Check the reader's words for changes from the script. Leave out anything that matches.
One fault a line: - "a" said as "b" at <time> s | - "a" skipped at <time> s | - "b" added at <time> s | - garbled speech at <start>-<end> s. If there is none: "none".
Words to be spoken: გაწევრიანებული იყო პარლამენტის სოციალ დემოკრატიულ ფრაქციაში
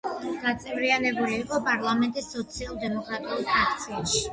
none